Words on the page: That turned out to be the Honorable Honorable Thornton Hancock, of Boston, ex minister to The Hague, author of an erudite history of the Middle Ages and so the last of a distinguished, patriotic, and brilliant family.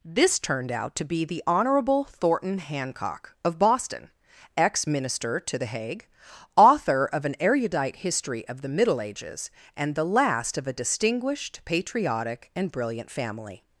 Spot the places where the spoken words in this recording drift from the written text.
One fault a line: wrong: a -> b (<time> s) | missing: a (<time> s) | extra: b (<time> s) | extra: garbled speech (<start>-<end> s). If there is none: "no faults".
wrong: That -> This (0.0 s)
missing: Honorable (2.0 s)
missing: so (9.9 s)